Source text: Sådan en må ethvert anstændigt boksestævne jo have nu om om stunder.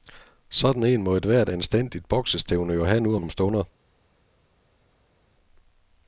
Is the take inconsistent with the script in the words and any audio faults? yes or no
no